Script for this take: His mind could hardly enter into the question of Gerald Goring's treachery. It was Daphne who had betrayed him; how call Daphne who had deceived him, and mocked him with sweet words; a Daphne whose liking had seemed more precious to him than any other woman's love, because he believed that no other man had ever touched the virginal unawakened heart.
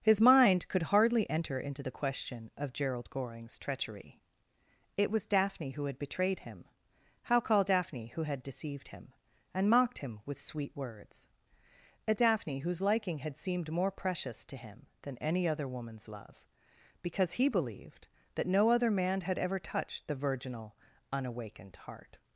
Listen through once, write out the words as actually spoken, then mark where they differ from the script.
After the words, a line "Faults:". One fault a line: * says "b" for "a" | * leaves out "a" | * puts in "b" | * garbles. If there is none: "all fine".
His mind could hardly enter into the question of Gerald Goring's treachery. It was Daphne who had betrayed him; how call Daphne who had deceived him, and mocked him with sweet words; a Daphne whose liking had seemed more precious to him than any other woman's love, because he believed that no other man had ever touched the virginal unawakened heart.
Faults:
all fine